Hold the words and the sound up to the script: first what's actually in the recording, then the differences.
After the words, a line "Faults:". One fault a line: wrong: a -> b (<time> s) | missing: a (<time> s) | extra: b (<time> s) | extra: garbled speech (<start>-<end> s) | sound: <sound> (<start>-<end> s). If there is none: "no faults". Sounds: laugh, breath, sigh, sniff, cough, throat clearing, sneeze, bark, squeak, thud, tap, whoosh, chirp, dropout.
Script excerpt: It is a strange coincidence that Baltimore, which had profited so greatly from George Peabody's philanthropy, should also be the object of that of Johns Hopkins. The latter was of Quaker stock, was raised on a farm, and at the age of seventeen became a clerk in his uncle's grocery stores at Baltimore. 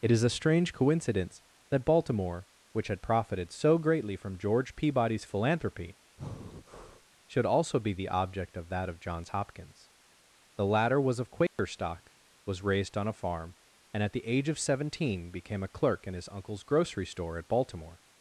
It is a strange coincidence that Baltimore, which had profited so greatly from George Peabody's philanthropy, should also be the object of that of Johns Hopkins. The latter was of Quaker stock, was raised on a farm, and at the age of seventeen became a clerk in his uncle's grocery store at Baltimore.
Faults:
sound: breath (6.2-7.1 s)
sound: dropout (11.5-11.6 s)
wrong: stores -> store (17.1 s)